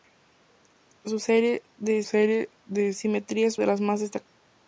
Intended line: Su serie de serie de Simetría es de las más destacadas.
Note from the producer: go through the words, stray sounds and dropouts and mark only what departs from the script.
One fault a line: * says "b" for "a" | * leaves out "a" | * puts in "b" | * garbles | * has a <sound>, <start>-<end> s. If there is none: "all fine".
all fine